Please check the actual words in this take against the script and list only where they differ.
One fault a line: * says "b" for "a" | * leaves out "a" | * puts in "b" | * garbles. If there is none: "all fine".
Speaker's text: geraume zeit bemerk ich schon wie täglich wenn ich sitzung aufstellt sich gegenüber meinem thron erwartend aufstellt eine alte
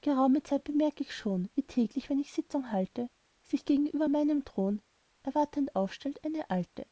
* says "halte" for "aufstellt"